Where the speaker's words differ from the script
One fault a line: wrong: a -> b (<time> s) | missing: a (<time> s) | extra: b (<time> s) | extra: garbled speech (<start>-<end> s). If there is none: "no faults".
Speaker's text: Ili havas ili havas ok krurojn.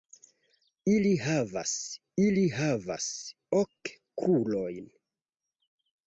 no faults